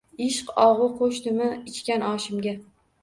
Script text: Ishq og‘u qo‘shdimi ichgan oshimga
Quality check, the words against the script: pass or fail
pass